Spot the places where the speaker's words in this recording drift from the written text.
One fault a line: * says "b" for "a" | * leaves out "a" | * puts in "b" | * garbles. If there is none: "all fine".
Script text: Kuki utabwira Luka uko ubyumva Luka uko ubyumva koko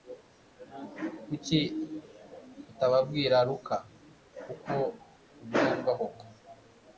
* leaves out "Luka uko ubyumva"